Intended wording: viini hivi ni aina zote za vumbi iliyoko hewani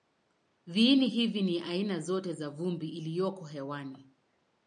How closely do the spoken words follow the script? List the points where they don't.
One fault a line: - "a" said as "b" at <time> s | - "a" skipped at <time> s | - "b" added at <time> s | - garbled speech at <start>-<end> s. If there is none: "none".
none